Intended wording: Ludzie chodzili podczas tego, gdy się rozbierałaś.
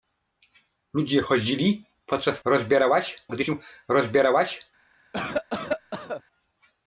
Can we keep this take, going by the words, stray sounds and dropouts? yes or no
no